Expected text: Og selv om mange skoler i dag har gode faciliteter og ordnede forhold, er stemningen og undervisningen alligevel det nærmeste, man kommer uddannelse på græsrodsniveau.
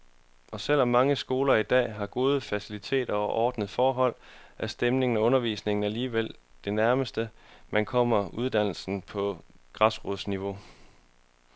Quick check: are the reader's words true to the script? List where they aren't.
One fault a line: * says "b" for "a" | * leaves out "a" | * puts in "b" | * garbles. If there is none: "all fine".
all fine